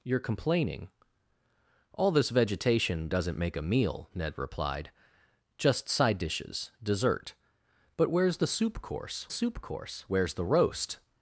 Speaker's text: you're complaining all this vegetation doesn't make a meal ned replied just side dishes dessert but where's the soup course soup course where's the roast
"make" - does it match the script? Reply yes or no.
yes